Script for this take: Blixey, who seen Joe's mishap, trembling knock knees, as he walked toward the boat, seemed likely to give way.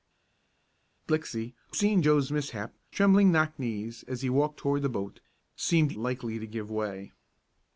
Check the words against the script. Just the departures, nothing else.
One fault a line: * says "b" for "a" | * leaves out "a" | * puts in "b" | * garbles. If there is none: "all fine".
all fine